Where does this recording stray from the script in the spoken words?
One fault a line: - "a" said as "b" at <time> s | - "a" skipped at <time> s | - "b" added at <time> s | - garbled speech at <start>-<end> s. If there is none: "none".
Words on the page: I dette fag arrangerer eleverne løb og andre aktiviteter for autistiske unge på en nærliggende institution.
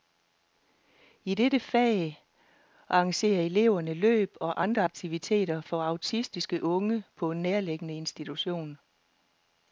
none